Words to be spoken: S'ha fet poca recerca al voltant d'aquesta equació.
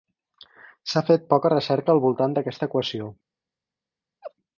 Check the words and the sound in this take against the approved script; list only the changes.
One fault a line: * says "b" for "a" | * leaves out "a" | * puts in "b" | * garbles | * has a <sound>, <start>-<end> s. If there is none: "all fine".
* has a laugh, 4.2-4.3 s